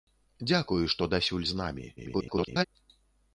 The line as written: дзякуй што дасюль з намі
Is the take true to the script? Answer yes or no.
no